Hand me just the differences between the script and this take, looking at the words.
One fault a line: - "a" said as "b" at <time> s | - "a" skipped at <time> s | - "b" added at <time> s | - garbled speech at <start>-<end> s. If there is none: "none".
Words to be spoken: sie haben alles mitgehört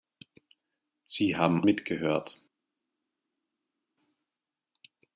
- "alles" skipped at 1.7 s